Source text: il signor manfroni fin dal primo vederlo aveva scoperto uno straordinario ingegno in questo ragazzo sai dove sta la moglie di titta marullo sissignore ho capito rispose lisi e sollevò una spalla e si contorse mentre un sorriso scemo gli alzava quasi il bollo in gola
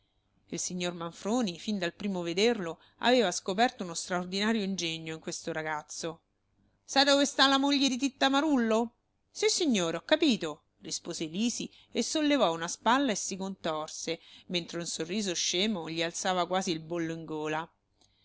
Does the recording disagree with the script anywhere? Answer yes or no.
no